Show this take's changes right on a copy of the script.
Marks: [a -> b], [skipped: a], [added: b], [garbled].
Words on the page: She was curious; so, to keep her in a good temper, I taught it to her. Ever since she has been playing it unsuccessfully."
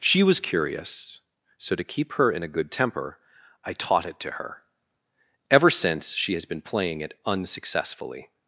She was curious; so, to keep her in a good temper, I taught it to her. Ever since she has been playing it unsuccessfully."